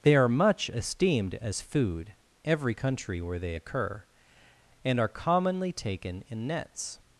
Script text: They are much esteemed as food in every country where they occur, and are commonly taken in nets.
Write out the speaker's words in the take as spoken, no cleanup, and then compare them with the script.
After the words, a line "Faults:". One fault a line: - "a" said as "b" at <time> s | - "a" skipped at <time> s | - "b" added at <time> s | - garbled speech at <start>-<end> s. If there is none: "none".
They are much esteemed as food every country where they occur, and are commonly taken in nets.
Faults:
- "in" skipped at 2.1 s